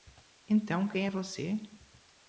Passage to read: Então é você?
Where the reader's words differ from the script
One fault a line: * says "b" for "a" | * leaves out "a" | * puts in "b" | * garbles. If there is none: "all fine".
* puts in "quem"